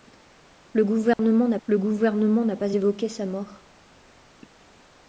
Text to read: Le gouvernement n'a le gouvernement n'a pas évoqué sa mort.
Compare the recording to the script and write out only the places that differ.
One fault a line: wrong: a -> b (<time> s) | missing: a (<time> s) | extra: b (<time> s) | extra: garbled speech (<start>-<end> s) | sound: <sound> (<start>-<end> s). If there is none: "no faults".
sound: dropout (1.1-1.2 s)